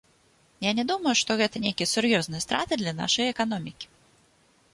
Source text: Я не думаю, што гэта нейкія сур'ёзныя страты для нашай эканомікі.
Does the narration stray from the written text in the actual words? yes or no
no